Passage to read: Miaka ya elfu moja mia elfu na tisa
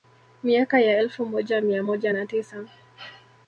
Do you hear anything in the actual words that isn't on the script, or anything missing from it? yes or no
yes